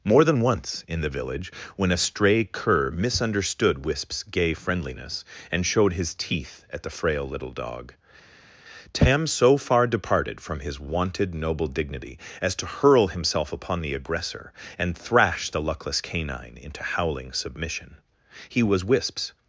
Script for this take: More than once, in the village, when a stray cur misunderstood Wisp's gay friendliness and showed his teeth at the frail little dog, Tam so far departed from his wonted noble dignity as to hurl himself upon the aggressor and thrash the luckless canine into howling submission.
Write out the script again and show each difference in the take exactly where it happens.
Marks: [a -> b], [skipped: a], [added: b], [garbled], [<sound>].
More than once, in the village, when a stray cur misunderstood Wisp's gay friendliness and showed his teeth at the frail little dog, Tam so far departed from his wonted noble dignity as to hurl himself upon the aggressor and thrash the luckless canine into howling submission. [added: He was Wisp's]